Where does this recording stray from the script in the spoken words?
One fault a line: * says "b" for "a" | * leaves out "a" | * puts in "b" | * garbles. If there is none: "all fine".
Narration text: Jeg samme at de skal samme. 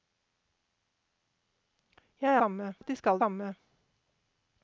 all fine